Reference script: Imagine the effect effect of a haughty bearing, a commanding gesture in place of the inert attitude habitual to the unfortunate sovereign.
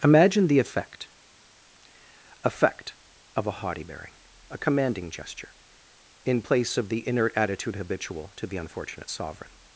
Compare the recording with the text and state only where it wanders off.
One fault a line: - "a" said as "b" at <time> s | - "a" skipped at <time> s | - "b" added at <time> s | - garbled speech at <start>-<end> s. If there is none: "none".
none